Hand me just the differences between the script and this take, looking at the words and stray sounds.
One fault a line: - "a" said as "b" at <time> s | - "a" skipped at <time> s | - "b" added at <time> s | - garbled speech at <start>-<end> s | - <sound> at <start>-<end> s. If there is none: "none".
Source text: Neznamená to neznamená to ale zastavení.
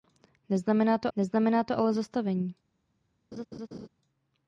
- laugh at 3.3-3.9 s